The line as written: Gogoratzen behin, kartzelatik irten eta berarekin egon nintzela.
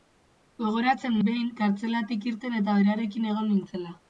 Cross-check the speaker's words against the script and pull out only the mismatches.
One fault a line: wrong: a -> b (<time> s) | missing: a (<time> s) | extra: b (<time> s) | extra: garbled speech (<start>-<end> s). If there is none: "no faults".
no faults